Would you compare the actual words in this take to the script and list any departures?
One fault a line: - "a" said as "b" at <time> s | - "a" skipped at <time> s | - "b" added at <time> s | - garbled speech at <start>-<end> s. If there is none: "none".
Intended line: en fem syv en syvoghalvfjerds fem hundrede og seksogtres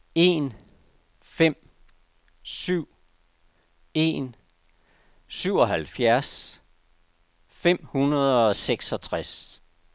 none